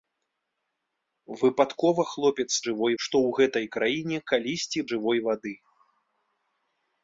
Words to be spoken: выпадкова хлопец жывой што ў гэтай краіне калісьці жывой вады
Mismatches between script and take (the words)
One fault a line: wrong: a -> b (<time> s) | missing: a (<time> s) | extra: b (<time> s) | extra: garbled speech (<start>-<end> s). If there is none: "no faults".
no faults